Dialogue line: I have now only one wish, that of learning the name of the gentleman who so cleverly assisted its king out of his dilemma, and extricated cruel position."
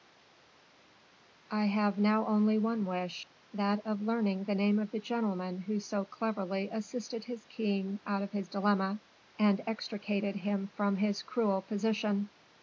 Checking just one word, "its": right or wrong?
wrong